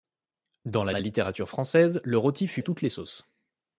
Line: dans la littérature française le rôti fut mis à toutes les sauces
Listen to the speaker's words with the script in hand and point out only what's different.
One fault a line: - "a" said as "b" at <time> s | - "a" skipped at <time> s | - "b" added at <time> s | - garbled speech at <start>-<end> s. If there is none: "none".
- "la" added at 0.9 s
- "mis" skipped at 2.6 s